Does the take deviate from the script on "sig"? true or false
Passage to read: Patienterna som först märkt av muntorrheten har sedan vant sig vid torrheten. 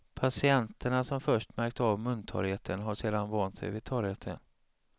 false